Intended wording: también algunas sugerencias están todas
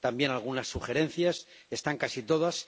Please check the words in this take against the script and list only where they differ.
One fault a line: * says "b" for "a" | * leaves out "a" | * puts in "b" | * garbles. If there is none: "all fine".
* puts in "casi"